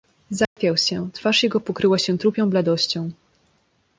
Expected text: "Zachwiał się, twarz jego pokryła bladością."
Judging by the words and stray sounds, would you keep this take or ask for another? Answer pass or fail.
fail